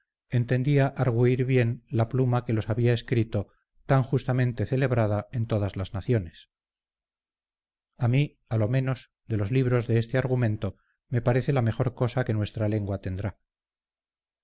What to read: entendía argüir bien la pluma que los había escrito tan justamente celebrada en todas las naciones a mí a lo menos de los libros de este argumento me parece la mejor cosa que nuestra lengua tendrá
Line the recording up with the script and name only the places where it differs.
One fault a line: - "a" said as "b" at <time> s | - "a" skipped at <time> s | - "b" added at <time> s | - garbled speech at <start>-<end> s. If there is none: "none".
none